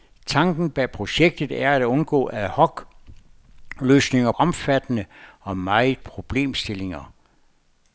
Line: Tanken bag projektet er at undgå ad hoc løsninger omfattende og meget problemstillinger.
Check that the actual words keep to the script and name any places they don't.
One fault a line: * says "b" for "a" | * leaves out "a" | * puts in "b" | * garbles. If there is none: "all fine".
all fine